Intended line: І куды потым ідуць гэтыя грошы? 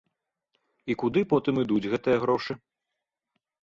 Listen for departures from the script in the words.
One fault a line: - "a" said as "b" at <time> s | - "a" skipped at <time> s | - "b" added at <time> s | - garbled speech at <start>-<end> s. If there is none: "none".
none